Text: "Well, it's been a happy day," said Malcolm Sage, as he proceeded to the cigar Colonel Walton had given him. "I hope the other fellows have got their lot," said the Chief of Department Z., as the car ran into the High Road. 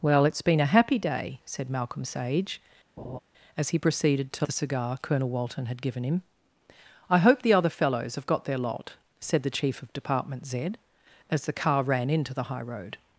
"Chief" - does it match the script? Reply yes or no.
yes